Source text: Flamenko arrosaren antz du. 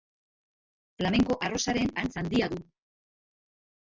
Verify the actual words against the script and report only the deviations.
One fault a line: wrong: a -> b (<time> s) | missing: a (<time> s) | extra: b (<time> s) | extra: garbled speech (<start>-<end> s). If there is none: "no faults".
extra: handia (2.2 s)